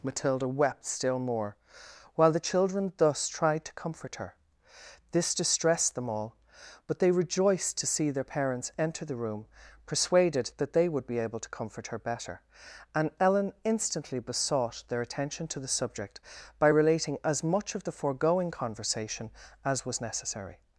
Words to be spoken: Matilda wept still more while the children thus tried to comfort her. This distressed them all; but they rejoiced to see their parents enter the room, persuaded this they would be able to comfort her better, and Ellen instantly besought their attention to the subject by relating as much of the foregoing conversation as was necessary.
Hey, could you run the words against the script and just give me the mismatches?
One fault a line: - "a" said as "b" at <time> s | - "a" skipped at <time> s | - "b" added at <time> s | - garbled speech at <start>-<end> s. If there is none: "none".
- "this" said as "that" at 10.6 s